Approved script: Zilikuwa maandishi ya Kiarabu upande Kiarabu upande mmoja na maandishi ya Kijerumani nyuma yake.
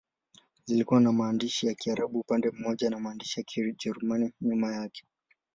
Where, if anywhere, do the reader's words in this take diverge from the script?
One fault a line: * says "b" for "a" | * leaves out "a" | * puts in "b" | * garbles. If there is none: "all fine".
* puts in "na"
* leaves out "Kiarabu upande"